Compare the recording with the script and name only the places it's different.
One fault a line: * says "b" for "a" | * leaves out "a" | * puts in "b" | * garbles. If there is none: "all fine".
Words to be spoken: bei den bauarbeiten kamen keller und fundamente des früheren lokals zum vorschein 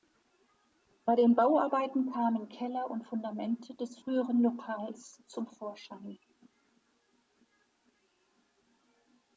all fine